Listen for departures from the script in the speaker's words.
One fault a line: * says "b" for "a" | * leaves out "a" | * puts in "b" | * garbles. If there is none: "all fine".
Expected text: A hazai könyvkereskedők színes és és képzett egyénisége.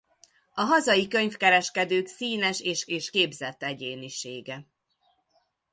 all fine